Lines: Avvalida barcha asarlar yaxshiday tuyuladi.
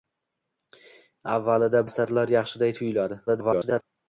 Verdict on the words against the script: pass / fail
fail